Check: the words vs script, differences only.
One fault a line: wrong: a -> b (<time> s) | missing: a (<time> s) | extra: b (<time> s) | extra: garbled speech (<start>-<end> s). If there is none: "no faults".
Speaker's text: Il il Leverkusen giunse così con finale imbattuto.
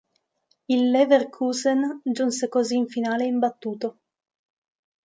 missing: il (0.9 s)
wrong: con -> in (2.8 s)